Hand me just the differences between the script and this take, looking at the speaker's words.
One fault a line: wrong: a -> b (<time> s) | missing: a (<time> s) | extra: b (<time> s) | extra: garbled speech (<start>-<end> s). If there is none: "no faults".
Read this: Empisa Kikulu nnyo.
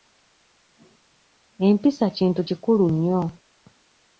extra: Kintu (2.2 s)